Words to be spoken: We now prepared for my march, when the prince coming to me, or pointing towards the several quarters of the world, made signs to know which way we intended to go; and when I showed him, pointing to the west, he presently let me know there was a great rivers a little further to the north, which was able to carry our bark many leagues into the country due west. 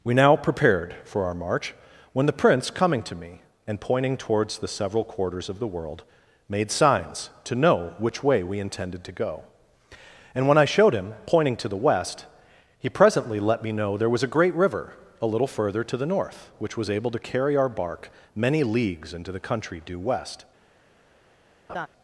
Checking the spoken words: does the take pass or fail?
fail